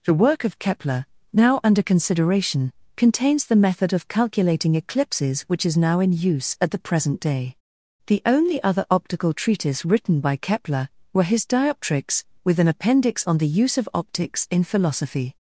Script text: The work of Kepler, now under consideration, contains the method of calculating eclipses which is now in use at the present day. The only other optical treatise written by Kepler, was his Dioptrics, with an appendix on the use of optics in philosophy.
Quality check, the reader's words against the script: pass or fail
fail